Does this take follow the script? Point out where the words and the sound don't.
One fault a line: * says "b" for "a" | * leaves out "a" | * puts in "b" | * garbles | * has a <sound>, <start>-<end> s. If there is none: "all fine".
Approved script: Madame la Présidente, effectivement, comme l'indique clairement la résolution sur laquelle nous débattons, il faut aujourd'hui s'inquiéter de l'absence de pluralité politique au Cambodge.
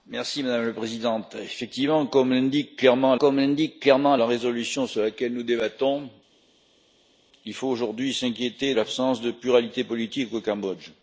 * puts in "comme l'indique clairement"
* leaves out "de"